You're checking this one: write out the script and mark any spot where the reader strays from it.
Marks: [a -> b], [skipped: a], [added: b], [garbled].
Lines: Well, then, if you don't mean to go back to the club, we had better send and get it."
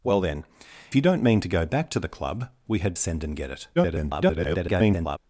Well, then, [skipped: if] you don't mean to go back to the club, we had [skipped: better] send and get it." [garbled]